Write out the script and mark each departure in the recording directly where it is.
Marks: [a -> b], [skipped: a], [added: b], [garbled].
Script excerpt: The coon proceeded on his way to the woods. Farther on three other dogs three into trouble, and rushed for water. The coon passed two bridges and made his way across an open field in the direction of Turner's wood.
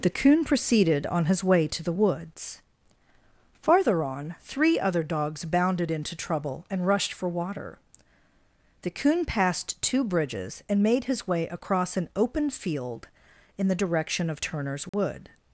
The coon proceeded on his way to the woods. Farther on three other dogs [three -> bounded] into trouble, and rushed for water. The coon passed two bridges and made his way across an open field in the direction of Turner's wood.